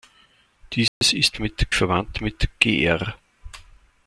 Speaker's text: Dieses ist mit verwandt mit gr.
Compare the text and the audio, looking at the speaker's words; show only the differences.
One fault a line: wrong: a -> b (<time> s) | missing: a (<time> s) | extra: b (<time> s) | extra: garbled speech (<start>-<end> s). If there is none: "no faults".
no faults